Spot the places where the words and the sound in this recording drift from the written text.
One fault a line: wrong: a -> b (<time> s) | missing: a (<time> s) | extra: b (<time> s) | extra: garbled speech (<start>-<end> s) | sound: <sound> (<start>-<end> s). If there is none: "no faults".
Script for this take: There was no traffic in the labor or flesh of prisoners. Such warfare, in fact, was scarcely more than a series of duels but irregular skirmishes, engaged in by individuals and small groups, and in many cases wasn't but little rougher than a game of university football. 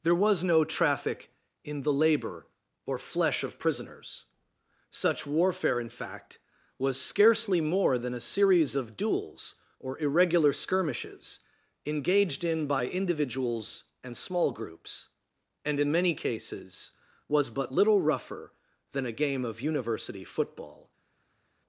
wrong: but -> or (9.8 s)
wrong: wasn't -> was (17.3 s)